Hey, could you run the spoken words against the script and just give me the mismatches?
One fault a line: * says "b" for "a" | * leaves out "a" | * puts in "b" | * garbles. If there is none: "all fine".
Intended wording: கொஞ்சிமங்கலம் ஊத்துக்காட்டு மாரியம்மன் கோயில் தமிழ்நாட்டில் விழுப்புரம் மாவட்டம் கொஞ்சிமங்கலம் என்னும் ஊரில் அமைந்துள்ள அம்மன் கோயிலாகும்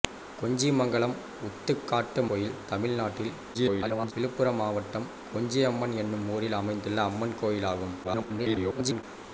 * leaves out "மாரியம்மன்"
* garbles
* garbles